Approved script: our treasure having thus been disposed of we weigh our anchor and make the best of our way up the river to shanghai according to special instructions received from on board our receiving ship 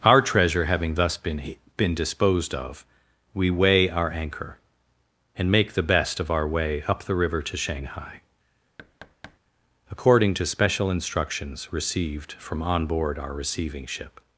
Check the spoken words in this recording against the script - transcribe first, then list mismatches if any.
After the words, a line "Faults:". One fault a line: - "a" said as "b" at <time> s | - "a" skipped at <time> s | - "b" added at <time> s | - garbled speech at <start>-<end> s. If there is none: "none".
our treasure having thus been been disposed of we weigh our anchor and make the best of our way up the river to shanghai according to special instructions received from on board our receiving ship
Faults:
- "been" added at 1.8 s